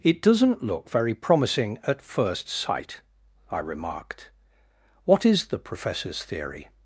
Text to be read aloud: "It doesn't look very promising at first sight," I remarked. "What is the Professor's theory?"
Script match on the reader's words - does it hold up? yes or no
yes